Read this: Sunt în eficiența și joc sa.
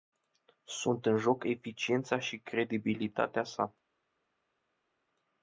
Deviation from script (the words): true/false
true